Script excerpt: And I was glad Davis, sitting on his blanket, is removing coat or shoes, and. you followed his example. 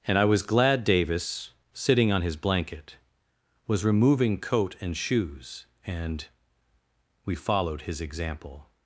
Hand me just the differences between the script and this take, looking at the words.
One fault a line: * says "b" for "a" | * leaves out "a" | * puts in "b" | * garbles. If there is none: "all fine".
* says "was" for "is"
* says "and" for "or"
* says "we" for "you"